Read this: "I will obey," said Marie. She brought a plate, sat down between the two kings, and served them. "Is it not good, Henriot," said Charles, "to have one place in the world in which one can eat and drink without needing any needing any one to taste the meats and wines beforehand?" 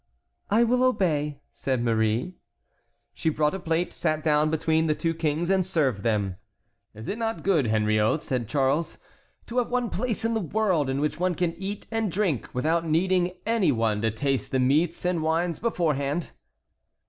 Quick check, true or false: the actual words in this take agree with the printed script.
false